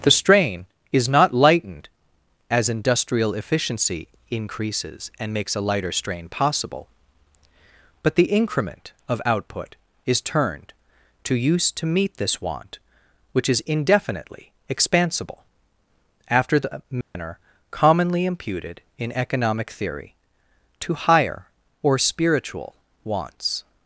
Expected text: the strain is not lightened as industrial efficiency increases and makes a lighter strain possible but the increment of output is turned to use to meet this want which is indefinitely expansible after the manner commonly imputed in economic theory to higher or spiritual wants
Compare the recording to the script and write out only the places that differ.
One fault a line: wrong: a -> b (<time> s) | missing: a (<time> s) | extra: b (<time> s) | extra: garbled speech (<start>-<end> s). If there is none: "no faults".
no faults